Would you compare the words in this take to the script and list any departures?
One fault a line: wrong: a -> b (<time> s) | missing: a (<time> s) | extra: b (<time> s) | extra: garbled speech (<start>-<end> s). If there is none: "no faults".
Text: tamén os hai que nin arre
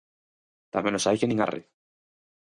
no faults